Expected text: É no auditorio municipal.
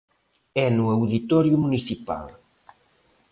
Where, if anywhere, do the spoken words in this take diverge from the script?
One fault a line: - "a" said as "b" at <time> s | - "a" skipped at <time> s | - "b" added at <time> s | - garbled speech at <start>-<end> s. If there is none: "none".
none